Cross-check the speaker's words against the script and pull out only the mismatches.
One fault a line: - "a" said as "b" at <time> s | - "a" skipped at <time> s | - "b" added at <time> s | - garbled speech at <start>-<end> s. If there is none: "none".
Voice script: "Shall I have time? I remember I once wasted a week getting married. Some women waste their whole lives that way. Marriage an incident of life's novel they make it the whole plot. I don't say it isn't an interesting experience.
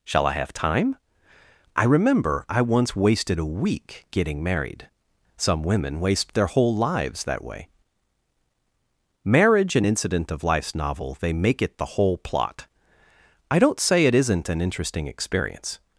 none